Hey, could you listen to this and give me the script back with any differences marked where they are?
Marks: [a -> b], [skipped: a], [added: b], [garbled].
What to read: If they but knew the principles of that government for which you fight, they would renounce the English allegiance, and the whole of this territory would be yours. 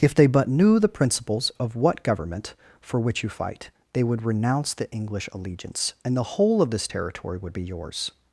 If they but knew the principles of [that -> what] government for which you fight, they would renounce the English allegiance, and the whole of this territory would be yours.